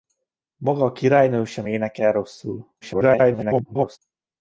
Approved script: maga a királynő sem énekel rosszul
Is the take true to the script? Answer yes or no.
no